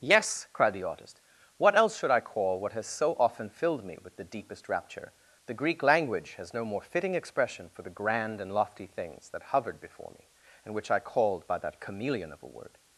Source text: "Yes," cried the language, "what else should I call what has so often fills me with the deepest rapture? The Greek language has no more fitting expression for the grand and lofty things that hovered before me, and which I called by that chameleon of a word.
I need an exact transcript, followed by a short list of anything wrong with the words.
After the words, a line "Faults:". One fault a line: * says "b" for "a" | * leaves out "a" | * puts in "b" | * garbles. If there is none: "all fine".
"Yes," cried the artist, "what else should I call what has so often filled me with the deepest rapture? The Greek language has no more fitting expression for the grand and lofty things that hovered before me, and which I called by that chameleon of a word.
Faults:
* says "artist" for "language"
* says "filled" for "fills"